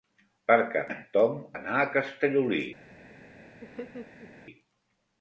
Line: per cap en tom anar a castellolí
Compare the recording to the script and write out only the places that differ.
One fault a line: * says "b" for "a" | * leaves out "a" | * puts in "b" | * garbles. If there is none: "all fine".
all fine